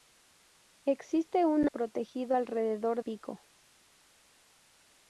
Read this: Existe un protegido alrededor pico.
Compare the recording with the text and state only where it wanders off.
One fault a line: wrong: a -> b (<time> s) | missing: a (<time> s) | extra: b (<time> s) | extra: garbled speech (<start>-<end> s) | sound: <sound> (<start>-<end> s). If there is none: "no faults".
no faults